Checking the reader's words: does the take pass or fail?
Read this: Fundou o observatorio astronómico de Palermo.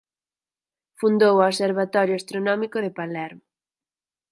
pass